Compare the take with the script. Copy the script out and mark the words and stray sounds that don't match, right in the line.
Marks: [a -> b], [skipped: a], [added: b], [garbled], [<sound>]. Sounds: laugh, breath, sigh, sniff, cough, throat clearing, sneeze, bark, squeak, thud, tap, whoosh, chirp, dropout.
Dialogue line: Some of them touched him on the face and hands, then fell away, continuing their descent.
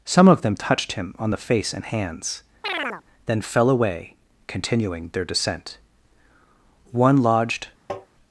Some of them touched him on the face and hands, [chirp] then fell away, continuing their descent. [added: One lodged] [tap]